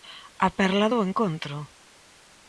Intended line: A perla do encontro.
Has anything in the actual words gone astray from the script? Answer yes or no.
no